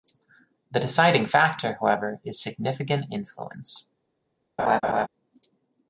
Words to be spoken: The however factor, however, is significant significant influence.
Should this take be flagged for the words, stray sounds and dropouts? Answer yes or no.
yes